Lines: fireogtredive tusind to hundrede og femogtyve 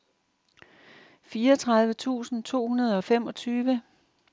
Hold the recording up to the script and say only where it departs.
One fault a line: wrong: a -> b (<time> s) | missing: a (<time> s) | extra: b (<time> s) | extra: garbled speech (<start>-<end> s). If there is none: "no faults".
no faults